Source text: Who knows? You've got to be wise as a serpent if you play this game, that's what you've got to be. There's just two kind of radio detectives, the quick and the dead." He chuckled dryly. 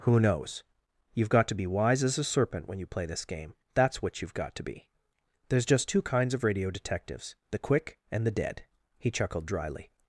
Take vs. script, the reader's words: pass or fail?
fail